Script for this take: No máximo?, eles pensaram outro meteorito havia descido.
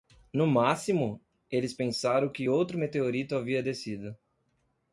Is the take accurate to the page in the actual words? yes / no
no